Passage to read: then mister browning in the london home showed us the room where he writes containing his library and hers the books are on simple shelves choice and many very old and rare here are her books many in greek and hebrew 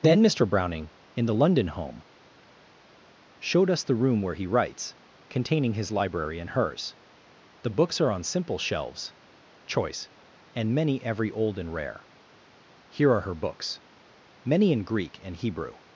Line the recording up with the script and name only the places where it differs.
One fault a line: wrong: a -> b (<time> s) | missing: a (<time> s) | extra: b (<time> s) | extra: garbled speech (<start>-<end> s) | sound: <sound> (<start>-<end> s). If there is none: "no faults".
wrong: very -> every (11.0 s)